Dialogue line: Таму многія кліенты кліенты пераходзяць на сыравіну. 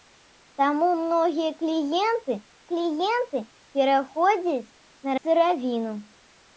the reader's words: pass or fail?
pass